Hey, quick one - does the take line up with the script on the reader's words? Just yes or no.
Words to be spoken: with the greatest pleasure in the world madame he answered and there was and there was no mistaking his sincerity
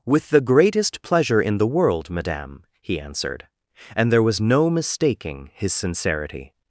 no